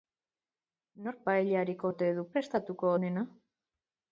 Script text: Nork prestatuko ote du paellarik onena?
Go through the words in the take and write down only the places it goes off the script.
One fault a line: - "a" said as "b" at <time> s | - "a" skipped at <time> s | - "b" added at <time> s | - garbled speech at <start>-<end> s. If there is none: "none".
- "prestatuko" said as "paellarik" at 1.3 s
- "paellarik" said as "prestatuko" at 2.3 s